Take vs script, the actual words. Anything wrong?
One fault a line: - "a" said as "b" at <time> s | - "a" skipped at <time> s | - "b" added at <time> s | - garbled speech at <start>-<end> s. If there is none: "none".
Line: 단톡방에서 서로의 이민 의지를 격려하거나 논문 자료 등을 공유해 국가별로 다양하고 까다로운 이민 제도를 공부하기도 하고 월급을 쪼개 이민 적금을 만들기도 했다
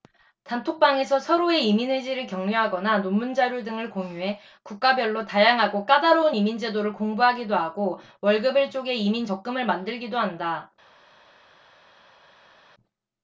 - "했다" said as "한다" at 10.2 s